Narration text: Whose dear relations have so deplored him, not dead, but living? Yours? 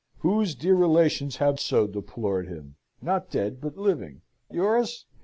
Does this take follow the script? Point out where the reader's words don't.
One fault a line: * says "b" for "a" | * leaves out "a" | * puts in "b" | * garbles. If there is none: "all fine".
all fine